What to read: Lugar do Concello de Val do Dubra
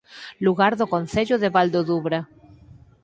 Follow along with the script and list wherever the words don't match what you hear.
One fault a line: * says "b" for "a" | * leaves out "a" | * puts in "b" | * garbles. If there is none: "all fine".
all fine